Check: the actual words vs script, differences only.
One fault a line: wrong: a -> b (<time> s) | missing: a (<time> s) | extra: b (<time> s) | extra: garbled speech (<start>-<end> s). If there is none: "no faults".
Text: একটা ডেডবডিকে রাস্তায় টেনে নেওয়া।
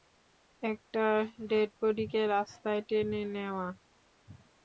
no faults